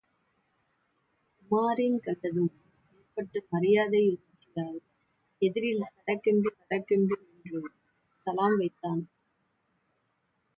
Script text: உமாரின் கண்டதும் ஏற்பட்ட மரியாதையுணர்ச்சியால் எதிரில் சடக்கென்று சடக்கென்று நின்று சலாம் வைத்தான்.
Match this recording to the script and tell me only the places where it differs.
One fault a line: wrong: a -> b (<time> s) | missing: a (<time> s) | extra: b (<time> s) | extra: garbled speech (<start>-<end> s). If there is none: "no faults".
no faults